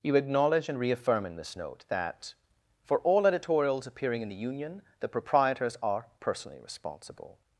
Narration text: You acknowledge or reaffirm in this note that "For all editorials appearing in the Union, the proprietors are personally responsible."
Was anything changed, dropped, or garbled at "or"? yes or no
yes